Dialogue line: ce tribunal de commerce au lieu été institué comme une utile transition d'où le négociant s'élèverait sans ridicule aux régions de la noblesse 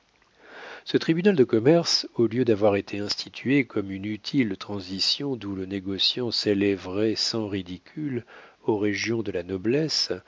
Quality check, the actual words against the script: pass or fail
fail